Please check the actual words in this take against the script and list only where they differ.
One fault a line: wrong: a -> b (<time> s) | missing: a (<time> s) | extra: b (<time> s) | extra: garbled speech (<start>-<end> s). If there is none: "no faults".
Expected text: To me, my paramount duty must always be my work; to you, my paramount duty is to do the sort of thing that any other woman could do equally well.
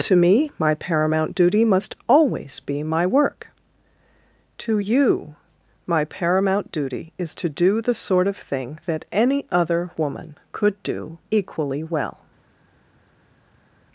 no faults